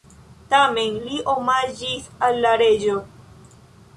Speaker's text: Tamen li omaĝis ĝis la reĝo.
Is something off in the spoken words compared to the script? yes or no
yes